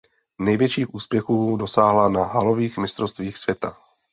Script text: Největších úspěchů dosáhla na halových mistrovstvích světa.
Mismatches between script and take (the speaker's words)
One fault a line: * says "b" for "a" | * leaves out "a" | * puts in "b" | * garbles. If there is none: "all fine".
all fine